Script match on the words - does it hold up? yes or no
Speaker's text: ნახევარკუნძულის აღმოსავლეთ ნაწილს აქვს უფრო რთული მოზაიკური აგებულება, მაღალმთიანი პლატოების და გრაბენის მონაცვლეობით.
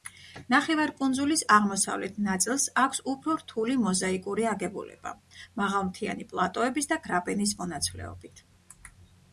yes